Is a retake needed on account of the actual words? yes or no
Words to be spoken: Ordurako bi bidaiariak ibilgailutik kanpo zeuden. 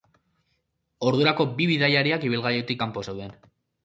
no